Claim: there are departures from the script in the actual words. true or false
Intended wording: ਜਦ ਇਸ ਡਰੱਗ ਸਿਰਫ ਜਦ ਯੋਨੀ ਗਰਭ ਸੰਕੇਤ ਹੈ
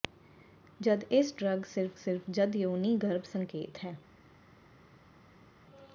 true